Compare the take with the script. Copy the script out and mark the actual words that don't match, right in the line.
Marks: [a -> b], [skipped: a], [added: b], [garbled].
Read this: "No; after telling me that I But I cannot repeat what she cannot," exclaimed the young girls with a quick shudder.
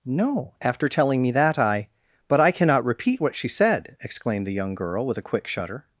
"No; after telling me that I But I cannot repeat what she [cannot," -> said] exclaimed the young [girls -> girl] with a quick shudder.